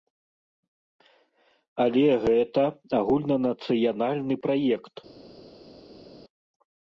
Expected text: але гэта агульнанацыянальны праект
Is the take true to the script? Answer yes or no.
yes